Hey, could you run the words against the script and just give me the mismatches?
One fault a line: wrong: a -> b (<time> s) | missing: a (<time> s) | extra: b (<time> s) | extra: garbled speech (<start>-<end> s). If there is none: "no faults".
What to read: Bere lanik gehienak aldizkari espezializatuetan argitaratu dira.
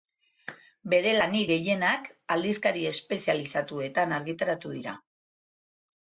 no faults